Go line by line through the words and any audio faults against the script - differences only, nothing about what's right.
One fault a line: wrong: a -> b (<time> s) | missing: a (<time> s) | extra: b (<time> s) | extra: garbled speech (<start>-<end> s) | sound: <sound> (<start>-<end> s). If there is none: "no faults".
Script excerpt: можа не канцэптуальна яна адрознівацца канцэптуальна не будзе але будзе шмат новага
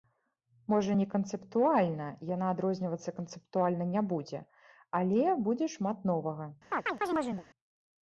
sound: chirp (6.7-7.5 s)